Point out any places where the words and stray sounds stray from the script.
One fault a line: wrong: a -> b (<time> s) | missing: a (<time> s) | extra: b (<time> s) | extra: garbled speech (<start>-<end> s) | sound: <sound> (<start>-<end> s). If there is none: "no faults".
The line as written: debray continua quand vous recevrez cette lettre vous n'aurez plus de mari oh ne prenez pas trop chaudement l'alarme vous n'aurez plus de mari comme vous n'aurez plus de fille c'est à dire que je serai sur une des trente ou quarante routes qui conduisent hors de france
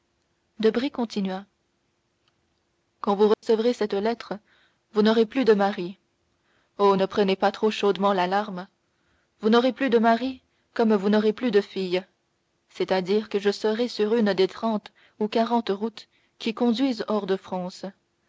sound: dropout (3.3-3.4 s)